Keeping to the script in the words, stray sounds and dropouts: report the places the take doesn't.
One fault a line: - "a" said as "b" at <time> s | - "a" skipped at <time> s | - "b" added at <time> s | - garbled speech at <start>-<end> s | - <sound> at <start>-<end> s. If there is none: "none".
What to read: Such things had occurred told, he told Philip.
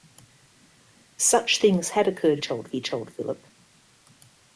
none